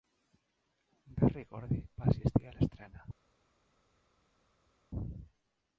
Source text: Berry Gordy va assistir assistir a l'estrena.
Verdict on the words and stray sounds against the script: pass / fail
fail